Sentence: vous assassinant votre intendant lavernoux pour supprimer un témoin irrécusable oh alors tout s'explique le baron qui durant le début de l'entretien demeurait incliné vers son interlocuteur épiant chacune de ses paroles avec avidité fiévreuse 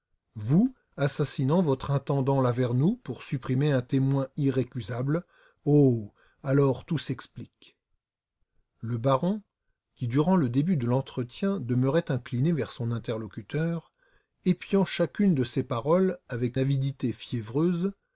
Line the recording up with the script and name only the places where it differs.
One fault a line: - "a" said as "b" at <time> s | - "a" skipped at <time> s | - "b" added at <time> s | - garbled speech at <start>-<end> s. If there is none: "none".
none